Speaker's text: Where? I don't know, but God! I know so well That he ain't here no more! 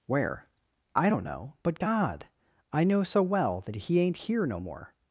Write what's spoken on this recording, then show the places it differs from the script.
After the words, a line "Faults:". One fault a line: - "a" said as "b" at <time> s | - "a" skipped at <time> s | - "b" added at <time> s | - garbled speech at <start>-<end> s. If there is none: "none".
Where? I don't know, but God! I know so well That he ain't here no more!
Faults:
none